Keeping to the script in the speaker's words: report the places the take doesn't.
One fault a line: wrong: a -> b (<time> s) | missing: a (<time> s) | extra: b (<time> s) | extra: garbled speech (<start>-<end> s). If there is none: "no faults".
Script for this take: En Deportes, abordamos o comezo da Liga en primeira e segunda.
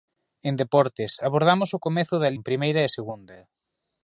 missing: Liga (2.3 s)